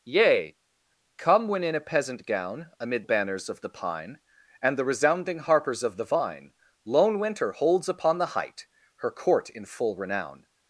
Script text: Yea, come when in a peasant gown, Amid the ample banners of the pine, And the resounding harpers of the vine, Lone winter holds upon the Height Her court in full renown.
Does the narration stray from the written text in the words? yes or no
yes